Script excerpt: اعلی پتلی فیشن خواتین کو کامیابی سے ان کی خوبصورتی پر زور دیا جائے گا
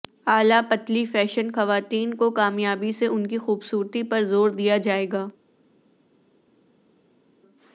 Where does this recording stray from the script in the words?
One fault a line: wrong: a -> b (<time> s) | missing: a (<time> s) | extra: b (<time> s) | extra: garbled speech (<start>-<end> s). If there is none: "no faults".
no faults